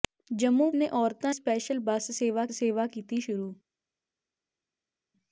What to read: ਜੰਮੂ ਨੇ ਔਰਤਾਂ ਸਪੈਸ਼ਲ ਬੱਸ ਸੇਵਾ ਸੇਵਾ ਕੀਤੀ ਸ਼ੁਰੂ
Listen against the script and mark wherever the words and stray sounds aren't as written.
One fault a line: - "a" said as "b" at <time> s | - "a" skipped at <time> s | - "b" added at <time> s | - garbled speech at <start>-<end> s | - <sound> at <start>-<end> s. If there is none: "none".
none